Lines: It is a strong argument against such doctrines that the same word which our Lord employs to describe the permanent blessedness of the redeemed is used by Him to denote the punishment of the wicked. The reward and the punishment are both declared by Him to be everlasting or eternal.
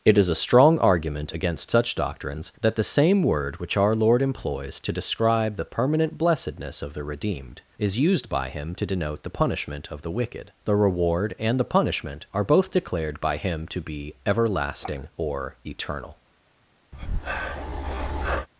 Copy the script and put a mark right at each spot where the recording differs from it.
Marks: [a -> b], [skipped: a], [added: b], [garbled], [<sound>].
It is a strong argument against such doctrines that the same word which our Lord employs to describe the permanent blessedness of the redeemed is used by Him to denote the punishment of the wicked. The reward and the punishment are both declared by Him to be everlasting or eternal. [breath]